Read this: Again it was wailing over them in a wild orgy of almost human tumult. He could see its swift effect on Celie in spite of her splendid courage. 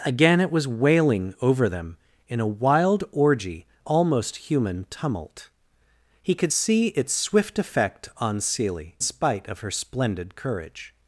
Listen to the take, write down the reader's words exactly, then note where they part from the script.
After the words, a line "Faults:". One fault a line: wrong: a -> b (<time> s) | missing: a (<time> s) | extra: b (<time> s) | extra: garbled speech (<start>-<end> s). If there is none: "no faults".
Again it was wailing over them in a wild orgy almost human tumult. He could see its swift effect on Celie spite of her splendid courage.
Faults:
missing: of (3.7 s)
missing: in (9.0 s)